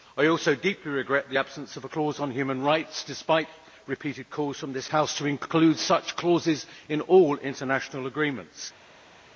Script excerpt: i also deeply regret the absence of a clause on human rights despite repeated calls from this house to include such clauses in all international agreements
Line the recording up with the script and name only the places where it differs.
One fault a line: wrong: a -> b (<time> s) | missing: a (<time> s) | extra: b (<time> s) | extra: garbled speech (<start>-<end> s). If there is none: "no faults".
no faults